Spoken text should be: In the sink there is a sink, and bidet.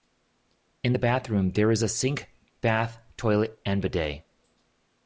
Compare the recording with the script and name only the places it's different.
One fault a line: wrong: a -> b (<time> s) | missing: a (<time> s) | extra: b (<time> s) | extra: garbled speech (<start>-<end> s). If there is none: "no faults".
wrong: sink -> bathroom (1.0 s)
extra: bath toilet (2.6 s)